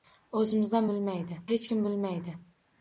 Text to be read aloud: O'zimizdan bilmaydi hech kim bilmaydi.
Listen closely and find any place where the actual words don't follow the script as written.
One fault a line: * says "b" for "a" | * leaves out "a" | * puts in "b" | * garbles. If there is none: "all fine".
all fine